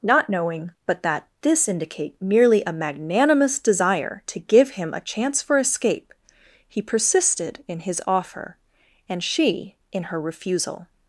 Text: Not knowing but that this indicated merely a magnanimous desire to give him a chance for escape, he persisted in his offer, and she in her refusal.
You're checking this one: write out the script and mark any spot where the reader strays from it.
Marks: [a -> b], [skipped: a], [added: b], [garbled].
Not knowing but that this [indicated -> indicate] merely a magnanimous desire to give him a chance for escape, he persisted in his offer, and she in her refusal.